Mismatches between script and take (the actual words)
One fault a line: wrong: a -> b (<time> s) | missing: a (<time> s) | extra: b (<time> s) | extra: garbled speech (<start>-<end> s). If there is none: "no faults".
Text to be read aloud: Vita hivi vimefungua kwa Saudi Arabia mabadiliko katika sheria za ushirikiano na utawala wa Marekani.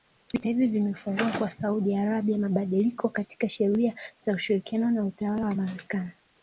no faults